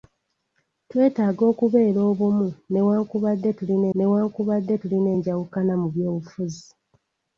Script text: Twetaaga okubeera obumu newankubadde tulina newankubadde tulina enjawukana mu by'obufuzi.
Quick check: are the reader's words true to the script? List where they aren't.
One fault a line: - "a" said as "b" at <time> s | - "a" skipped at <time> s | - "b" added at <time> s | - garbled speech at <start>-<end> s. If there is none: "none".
none